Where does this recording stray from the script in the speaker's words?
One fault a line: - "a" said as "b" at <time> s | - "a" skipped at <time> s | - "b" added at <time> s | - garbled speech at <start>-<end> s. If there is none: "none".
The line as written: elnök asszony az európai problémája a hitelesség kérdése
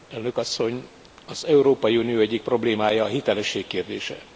- "unió egyik" added at 2.0 s